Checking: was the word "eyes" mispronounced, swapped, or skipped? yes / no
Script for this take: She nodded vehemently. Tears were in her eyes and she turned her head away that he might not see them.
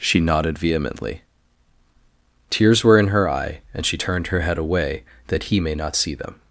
yes